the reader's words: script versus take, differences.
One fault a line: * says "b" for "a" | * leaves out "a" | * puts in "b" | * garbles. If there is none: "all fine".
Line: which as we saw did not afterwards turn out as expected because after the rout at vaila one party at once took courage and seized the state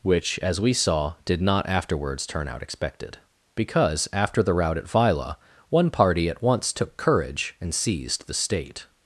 * leaves out "as"